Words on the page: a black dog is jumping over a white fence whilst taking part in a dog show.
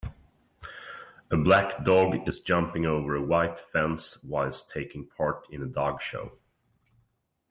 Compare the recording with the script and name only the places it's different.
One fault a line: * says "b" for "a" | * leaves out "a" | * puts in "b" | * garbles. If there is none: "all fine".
all fine